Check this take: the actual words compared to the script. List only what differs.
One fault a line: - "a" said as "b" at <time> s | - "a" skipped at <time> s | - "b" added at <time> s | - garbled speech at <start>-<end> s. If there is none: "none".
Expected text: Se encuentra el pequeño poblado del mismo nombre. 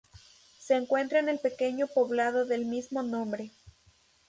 - "en" added at 1.2 s